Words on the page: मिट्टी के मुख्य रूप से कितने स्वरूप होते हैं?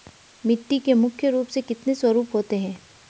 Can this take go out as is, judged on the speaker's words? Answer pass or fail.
pass